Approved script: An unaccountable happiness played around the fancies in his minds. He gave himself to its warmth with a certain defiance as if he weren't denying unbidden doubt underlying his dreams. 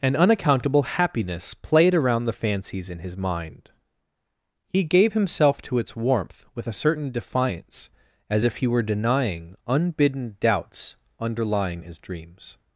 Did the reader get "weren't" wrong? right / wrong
wrong